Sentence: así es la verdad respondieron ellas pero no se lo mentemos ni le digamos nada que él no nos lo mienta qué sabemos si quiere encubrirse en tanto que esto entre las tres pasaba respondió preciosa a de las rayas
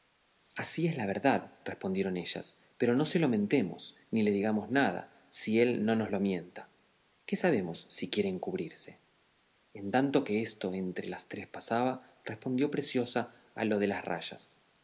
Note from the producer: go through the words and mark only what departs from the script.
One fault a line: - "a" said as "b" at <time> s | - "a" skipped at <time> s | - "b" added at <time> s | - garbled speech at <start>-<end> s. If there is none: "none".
- "que" said as "si" at 5.3 s
- "lo" added at 13.6 s